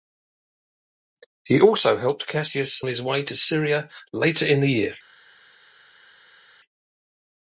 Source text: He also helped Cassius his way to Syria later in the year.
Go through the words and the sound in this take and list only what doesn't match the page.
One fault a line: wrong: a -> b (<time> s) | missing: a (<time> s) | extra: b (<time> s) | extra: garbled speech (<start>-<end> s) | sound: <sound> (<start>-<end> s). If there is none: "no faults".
no faults